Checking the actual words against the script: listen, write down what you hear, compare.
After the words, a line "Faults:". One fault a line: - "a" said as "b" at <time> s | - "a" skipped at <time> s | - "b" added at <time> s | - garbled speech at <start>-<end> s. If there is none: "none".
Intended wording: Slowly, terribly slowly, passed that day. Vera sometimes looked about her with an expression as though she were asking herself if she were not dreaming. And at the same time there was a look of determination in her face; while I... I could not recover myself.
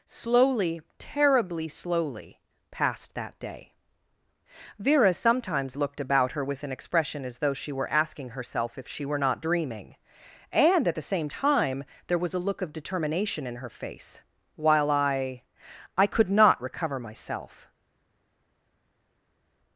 Slowly, terribly slowly, passed that day. Vera sometimes looked about her with an expression as though she were asking herself if she were not dreaming. And at the same time there was a look of determination in her face; while I... I could not recover myself.
Faults:
none